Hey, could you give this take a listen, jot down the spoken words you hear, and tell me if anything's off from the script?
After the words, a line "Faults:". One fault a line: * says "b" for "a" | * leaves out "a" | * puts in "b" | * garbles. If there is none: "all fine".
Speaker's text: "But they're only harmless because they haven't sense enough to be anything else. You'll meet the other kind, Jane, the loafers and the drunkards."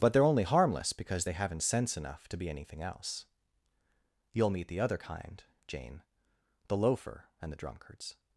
"But they're only harmless because they haven't sense enough to be anything else. You'll meet the other kind, Jane, the loafer and the drunkards."
Faults:
* says "loafer" for "loafers"